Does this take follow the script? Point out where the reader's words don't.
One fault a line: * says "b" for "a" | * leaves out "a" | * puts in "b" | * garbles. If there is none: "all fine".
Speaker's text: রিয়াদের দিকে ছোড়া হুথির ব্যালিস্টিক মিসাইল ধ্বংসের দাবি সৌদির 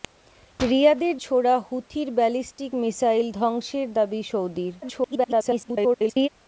* leaves out "দিকে"
* garbles